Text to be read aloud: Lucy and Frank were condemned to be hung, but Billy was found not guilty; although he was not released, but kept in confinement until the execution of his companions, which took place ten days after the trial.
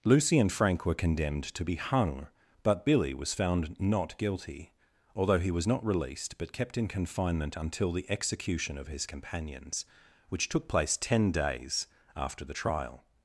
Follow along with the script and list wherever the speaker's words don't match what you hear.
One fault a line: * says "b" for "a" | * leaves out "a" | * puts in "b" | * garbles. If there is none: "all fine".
all fine